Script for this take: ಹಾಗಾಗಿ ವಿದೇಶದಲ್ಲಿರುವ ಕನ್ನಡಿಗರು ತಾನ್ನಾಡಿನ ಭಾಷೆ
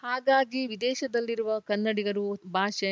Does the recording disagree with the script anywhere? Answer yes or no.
yes